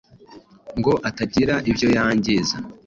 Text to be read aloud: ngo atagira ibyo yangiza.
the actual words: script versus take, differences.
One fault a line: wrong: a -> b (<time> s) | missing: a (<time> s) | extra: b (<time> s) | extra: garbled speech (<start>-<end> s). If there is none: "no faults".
no faults